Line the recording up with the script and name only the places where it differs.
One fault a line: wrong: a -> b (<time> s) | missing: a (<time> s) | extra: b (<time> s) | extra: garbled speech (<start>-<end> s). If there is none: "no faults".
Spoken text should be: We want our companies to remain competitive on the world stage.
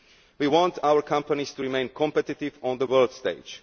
no faults